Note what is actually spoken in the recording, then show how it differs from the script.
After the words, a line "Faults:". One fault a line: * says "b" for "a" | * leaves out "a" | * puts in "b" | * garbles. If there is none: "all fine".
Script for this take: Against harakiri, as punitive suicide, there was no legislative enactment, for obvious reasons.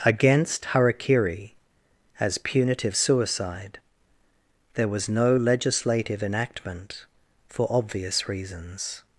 Against harakiri, as punitive suicide, there was no legislative enactment, for obvious reasons.
Faults:
all fine